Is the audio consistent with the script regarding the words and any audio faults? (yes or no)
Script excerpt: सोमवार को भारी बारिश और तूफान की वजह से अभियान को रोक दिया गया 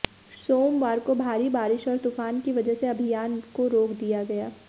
yes